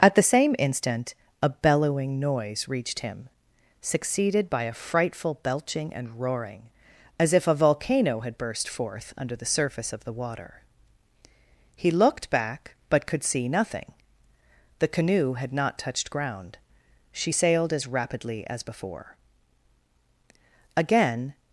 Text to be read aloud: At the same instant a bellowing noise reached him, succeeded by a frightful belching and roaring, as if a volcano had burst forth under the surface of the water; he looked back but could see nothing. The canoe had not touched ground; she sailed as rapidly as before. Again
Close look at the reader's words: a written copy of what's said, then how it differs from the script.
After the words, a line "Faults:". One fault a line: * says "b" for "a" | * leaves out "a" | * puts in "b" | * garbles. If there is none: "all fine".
At the same instant a bellowing noise reached him, succeeded by a frightful belching and roaring, as if a volcano had burst forth under the surface of the water; he looked back but could see nothing. The canoe had not touched ground; she sailed as rapidly as before. Again
Faults:
all fine